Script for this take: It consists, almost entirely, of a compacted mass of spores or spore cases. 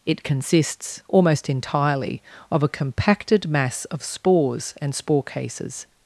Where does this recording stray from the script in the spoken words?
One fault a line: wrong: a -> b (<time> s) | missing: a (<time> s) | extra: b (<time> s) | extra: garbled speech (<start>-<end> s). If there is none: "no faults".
wrong: or -> and (4.8 s)